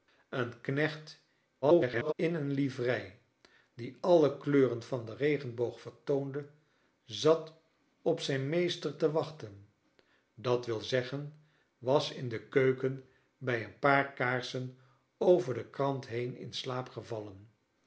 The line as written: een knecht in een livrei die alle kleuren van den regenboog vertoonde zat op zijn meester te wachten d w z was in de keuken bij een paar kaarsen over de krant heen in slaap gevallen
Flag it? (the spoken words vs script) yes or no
yes